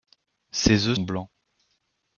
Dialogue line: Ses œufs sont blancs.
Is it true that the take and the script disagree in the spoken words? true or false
true